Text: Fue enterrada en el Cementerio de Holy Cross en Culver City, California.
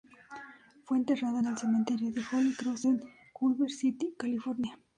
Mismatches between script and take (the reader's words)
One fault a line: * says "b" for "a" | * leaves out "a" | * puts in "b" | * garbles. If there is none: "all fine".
all fine